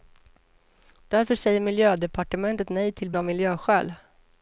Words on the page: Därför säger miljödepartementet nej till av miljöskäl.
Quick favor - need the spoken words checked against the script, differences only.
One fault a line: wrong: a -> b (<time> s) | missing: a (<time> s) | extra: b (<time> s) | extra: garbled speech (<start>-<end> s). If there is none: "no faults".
no faults